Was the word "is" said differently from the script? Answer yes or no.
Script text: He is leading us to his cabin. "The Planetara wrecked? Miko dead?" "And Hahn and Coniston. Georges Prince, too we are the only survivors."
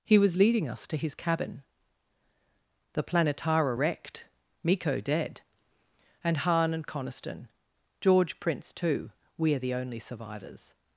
yes